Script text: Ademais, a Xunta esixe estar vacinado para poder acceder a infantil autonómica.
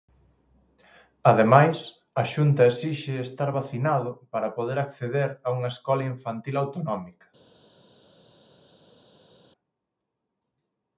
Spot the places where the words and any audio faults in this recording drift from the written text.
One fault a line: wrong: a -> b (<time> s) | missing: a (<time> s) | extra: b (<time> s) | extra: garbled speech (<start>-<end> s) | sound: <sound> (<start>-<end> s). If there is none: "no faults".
extra: unha escola (5.6 s)